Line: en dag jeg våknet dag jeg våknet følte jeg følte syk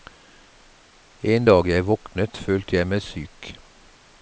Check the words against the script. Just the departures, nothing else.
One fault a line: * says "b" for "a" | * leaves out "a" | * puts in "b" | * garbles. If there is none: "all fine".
* leaves out "dag jeg våknet"
* says "meg" for "følte"